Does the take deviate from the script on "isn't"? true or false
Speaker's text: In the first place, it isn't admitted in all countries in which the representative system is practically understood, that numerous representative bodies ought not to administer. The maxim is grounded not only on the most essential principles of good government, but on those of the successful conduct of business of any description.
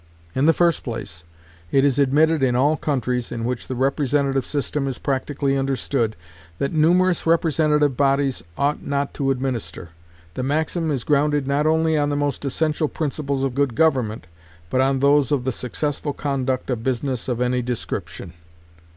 true